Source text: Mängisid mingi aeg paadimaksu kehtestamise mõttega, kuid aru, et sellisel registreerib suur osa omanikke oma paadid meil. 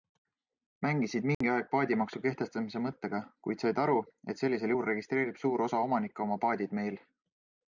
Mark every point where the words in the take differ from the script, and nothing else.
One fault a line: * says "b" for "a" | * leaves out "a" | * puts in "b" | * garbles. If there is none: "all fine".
* puts in "said"
* puts in "juhul"